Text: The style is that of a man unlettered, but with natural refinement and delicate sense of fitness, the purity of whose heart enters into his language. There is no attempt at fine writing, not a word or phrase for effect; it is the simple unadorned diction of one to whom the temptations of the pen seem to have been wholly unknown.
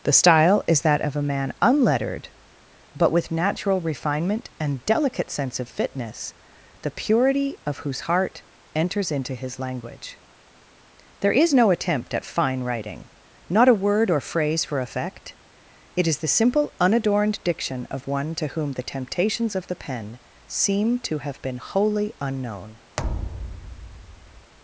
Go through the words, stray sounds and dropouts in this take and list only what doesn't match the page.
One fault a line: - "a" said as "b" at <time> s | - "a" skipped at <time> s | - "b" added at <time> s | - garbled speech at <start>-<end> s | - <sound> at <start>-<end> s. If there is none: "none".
- thud at 23.0-24.5 s